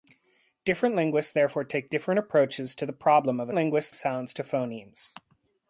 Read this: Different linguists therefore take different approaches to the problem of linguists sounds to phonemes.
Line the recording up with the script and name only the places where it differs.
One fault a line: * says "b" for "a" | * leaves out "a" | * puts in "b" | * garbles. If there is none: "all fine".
all fine